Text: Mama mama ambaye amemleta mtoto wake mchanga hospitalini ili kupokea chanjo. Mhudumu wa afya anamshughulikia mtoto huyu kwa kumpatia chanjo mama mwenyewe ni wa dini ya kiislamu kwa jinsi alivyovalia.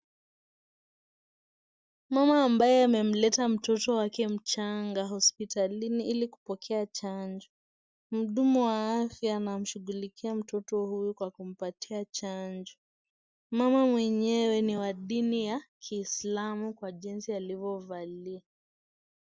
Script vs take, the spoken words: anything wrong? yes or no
yes